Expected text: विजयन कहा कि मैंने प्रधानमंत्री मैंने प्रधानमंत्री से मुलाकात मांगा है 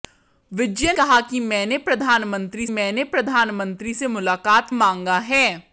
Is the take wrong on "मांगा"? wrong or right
right